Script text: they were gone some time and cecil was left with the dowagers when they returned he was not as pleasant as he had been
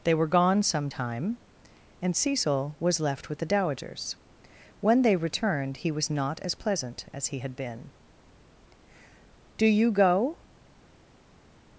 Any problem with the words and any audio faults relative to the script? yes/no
yes